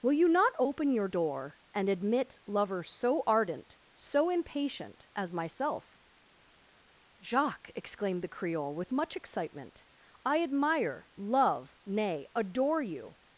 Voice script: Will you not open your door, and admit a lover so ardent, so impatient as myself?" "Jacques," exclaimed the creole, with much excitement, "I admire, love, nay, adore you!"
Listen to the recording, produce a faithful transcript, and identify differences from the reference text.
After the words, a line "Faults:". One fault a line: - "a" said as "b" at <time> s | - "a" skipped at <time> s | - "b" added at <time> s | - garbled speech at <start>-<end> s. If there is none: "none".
Will you not open your door, and admit lover so ardent, so impatient as myself?" "Jacques," exclaimed the creole, with much excitement, "I admire, love, nay, adore you!"
Faults:
- "a" skipped at 2.4 s